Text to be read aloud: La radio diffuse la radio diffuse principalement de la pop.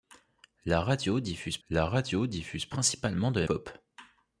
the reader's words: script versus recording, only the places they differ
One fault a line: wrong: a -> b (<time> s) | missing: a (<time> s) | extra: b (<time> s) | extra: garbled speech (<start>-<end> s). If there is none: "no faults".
no faults